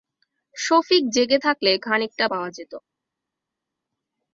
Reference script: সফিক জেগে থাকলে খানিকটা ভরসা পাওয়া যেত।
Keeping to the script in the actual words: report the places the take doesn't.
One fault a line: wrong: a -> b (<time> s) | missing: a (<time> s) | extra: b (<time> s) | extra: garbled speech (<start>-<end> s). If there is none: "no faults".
missing: ভরসা (2.2 s)